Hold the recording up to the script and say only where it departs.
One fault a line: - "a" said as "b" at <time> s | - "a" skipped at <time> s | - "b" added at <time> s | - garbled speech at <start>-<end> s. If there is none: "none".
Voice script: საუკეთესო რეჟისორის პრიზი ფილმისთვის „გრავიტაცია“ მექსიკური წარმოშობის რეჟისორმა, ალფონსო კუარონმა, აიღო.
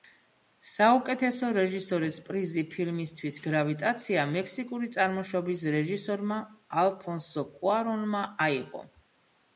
none